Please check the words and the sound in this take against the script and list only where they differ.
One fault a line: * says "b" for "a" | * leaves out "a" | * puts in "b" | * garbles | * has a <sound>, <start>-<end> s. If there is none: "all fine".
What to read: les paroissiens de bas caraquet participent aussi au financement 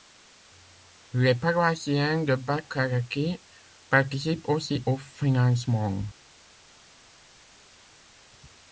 all fine